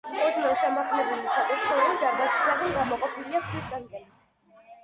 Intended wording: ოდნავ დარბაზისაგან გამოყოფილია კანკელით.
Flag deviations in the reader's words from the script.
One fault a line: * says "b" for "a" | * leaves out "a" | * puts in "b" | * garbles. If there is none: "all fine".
* puts in "შემაღლებული საკურთხეველი"
* puts in "ქვის"